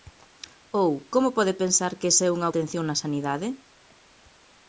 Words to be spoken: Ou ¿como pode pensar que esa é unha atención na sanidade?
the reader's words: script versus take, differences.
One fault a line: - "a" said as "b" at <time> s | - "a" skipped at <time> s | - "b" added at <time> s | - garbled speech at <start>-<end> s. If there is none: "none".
none